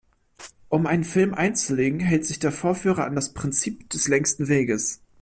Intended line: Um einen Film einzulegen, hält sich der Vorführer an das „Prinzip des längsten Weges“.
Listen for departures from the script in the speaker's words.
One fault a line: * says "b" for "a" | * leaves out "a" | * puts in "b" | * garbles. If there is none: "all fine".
all fine